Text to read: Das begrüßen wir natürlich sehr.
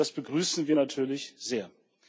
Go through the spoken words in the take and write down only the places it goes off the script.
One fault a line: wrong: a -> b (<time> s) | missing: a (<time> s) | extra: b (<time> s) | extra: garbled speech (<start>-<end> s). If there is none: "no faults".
no faults